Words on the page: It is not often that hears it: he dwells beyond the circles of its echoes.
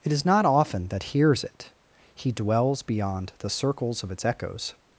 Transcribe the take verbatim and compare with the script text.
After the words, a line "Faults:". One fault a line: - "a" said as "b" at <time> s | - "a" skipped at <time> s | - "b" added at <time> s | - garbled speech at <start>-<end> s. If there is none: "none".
It is not often that hears it: he dwells beyond the circles of its echoes.
Faults:
none